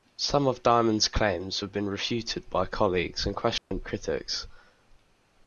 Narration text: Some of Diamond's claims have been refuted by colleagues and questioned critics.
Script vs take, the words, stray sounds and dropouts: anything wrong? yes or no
yes